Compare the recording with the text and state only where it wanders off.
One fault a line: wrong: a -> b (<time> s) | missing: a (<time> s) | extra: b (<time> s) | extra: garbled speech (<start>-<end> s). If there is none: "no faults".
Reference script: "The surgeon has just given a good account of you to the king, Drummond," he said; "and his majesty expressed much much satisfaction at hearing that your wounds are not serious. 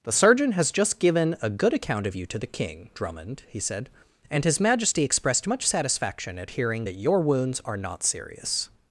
missing: much (5.7 s)